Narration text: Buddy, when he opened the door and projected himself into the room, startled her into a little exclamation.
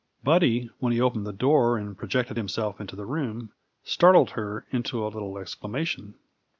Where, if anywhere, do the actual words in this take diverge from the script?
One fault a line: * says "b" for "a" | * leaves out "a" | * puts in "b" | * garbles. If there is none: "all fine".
all fine